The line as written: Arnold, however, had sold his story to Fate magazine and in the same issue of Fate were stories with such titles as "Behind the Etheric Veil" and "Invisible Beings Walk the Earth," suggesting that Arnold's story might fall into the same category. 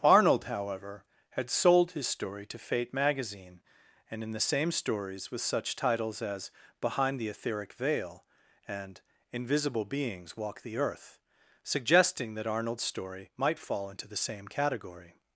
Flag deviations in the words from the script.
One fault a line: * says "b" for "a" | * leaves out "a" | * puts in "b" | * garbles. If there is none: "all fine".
* leaves out "issue of Fate were"